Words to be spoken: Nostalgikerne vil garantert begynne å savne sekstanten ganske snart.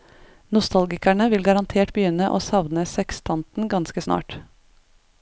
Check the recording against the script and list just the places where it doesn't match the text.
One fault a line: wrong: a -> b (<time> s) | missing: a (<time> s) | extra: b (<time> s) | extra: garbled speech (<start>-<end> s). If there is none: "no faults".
no faults